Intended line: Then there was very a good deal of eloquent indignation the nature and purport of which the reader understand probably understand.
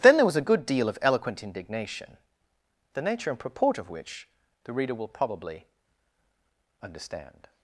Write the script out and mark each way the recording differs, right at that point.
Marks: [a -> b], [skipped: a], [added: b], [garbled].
Then there was [skipped: very] a good deal of eloquent indignation the nature and purport of which the reader [understand -> will] probably understand.